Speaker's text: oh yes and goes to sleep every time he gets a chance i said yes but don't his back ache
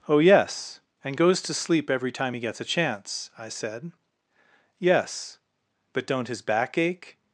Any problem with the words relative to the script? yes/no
no